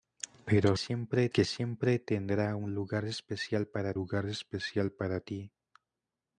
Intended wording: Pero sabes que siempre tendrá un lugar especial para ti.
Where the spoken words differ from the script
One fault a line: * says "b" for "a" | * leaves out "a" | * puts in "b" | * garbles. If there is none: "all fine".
* says "siempre" for "sabes"
* puts in "lugar especial para"